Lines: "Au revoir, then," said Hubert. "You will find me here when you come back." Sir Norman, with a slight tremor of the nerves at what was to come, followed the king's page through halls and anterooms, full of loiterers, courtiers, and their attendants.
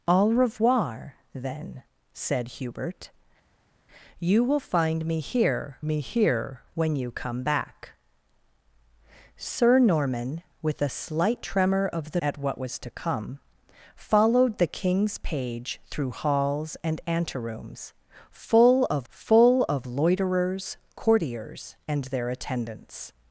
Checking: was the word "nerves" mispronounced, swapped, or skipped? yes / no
yes